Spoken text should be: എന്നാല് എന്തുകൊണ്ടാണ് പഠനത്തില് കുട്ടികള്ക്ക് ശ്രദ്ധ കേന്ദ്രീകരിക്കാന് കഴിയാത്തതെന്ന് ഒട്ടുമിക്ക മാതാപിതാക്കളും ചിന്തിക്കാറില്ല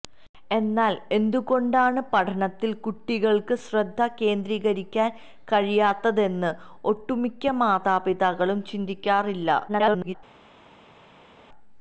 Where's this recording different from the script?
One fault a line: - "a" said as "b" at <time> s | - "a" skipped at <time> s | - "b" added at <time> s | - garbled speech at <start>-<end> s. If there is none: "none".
- garbled speech at 9.7-10.2 s